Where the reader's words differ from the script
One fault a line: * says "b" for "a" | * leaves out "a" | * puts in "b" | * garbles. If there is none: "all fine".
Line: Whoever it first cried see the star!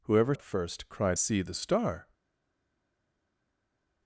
all fine